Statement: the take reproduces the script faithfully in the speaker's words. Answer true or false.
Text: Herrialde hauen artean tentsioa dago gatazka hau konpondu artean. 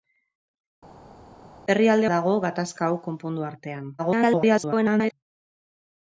false